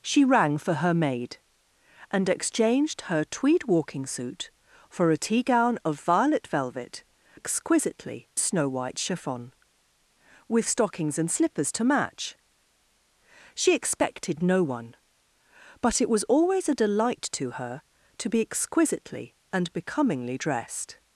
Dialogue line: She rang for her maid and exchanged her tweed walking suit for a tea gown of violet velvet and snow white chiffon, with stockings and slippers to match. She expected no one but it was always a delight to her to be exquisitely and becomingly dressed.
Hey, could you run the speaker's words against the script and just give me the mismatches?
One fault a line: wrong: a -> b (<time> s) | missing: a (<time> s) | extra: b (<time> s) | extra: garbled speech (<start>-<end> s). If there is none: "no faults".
wrong: and -> exquisitely (7.3 s)